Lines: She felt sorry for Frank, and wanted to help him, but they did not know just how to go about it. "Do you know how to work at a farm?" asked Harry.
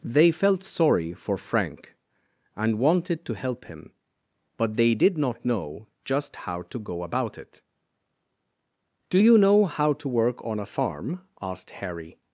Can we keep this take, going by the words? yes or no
no